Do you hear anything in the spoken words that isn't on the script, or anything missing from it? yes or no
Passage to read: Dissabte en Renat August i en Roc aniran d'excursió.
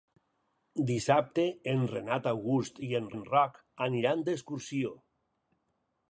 yes